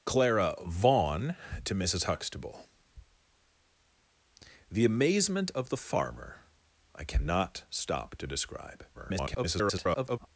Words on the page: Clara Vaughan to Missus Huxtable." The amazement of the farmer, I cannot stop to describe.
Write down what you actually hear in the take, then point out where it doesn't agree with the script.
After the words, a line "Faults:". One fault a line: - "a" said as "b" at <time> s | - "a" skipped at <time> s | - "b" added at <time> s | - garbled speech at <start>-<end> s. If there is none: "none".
Clara Vaughan to Missus Huxtable." The amazement of the farmer, I cannot stop to describe. [garbled]
Faults:
- garbled speech at 8.9-10.3 s